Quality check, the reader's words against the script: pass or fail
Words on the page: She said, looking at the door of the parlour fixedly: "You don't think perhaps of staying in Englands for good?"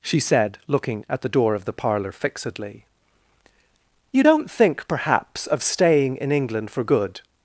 fail